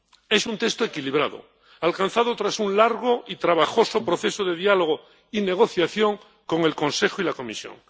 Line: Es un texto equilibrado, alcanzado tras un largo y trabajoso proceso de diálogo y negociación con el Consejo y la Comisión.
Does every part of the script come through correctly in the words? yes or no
yes